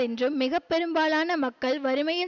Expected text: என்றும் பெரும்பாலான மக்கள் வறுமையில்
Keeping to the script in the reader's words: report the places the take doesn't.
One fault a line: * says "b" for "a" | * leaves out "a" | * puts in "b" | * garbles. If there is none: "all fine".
* puts in "மிக"